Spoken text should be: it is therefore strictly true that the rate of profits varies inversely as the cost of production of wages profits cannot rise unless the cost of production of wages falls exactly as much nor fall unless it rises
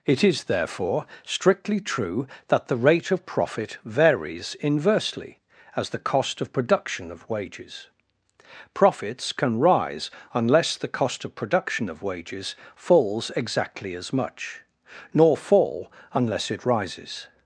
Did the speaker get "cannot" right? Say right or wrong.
wrong